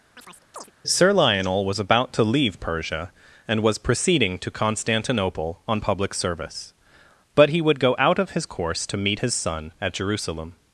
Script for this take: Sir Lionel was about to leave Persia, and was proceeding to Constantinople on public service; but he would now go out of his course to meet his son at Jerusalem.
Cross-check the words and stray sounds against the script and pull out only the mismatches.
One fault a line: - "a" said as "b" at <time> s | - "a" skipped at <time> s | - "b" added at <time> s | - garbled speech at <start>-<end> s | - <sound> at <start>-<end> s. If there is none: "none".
- chirp at 0.2-0.7 s
- "now" skipped at 7.8 s